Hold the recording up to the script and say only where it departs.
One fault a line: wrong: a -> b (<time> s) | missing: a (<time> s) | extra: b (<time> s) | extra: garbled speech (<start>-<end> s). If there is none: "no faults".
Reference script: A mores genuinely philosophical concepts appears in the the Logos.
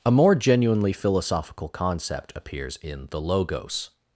wrong: mores -> more (0.1 s)
wrong: concepts -> concept (1.7 s)
missing: the (3.2 s)